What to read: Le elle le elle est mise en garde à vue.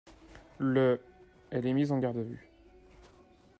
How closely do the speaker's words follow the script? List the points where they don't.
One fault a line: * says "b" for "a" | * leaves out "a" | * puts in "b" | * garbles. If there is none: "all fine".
* leaves out "le elle"